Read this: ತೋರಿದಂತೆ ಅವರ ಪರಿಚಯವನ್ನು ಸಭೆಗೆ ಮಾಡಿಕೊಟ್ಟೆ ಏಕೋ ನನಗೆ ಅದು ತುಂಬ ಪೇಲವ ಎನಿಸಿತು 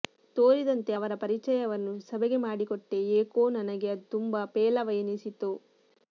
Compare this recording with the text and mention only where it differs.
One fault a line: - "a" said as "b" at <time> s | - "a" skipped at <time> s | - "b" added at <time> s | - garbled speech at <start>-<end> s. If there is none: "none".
none